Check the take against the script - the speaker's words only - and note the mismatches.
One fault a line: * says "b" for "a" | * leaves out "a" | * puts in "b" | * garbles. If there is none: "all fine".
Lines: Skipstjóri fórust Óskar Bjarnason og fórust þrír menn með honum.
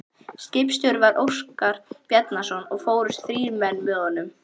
* says "var" for "fórust"